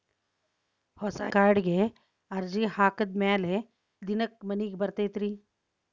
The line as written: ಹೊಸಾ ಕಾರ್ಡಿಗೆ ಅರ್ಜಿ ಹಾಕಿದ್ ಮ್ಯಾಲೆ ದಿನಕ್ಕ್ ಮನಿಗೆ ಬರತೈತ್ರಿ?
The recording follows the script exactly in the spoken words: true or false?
true